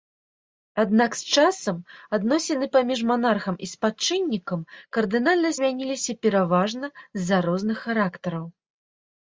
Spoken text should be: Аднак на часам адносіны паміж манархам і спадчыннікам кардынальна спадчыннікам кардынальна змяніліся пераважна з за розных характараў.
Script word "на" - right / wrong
wrong